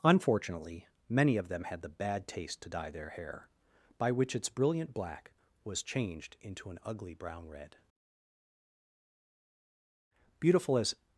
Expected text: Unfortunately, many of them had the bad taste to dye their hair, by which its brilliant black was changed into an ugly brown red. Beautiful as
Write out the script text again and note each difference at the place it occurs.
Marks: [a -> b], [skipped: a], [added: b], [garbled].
Unfortunately, many of them had the bad taste to dye their hair, by which its brilliant black was changed into an ugly brown red. Beautiful as